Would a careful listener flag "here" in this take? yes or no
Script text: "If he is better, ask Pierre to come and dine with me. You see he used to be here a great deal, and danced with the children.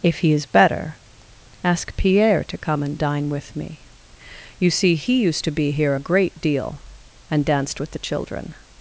no